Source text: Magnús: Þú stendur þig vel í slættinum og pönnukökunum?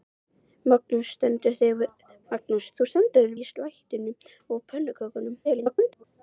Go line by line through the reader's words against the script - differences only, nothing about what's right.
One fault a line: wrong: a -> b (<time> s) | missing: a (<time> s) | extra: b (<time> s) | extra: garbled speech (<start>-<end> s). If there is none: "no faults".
missing: vel (3.4 s)
extra: garbled speech (5.4-6.0 s)